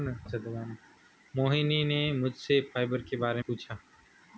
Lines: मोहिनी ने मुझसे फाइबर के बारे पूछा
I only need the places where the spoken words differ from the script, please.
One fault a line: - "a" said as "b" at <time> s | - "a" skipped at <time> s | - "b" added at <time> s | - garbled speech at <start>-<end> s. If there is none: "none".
none